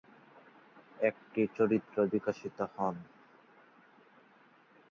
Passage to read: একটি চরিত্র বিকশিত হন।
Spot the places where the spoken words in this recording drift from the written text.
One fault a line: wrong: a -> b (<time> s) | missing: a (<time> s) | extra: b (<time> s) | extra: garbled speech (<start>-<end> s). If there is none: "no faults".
no faults